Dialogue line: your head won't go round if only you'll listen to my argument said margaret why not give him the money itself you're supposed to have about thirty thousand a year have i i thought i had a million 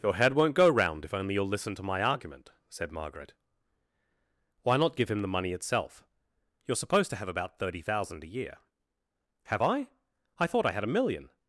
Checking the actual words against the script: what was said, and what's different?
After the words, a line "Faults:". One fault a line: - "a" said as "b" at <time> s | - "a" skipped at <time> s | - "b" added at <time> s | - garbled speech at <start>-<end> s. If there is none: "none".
your head won't go round if only you'll listen to my argument said margaret why not give him the money itself you're supposed to have about thirty thousand a year have i i thought i had a million
Faults:
none